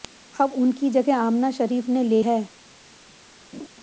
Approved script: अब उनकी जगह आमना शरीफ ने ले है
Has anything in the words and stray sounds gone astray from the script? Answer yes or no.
yes